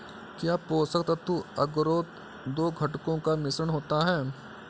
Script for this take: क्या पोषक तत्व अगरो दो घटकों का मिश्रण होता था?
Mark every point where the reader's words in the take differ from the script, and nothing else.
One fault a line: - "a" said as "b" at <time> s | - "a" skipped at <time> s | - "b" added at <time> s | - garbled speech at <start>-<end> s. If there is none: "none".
- "था" said as "है" at 4.1 s